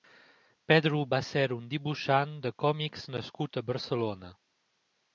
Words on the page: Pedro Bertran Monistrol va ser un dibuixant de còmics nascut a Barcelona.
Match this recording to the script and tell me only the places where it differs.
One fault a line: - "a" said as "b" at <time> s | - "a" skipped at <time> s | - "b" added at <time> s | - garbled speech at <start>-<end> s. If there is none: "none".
- "Bertran Monistrol" skipped at 1.0 s